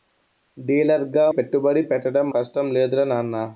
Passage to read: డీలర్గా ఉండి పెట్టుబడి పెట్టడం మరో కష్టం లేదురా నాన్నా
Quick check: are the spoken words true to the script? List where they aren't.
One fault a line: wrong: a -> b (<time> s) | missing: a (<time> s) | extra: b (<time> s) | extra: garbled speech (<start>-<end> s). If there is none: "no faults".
missing: ఉండి (1.2 s)
missing: మరో (2.3 s)